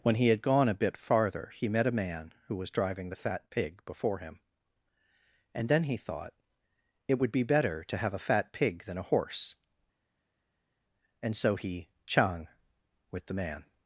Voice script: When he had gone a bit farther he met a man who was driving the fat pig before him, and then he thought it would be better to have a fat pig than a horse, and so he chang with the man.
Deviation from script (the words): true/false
false